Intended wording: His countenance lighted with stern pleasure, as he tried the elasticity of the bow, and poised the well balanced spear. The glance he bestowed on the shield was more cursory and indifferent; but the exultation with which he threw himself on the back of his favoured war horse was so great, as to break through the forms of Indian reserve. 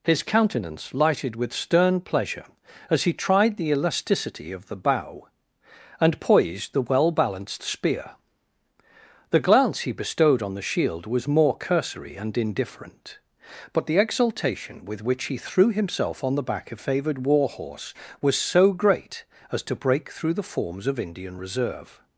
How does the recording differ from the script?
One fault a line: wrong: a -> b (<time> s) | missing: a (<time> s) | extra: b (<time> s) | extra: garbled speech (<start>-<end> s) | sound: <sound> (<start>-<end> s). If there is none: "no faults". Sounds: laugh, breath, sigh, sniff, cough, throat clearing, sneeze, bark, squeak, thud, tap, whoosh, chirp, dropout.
missing: his (16.8 s)